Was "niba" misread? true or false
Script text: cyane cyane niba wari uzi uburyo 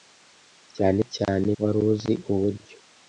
true